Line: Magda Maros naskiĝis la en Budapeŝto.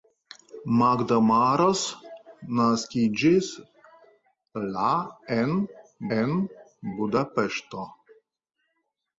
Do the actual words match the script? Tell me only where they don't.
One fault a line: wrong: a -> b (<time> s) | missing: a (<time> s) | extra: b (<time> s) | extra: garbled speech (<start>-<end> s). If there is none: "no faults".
extra: en (6.2 s)